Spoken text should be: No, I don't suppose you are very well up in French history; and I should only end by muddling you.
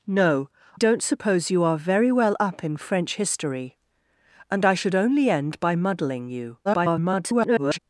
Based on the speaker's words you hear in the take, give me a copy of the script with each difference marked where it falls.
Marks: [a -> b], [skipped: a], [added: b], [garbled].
No, [skipped: I] don't suppose you are very well up in French history; and I should only end by muddling you. [garbled]